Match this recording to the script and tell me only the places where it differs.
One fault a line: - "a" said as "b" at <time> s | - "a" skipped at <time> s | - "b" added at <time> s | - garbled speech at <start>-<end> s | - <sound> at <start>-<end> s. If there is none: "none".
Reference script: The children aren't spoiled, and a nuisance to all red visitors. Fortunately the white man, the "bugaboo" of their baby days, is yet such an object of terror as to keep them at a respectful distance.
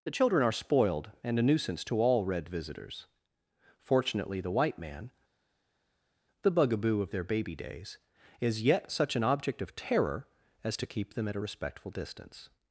- "aren't" said as "are" at 0.4 s